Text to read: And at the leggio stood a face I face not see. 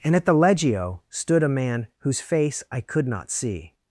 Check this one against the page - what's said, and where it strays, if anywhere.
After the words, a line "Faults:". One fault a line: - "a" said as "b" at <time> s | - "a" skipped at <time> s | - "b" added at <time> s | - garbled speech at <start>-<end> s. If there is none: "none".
And at the leggio stood a man whose face I could not see.
Faults:
- "man whose" added at 1.5 s
- "face" said as "could" at 2.8 s